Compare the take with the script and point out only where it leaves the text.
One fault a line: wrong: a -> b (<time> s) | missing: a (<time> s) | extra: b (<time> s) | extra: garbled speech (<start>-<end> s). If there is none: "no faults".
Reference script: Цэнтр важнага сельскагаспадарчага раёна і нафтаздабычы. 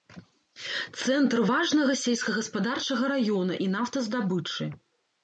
no faults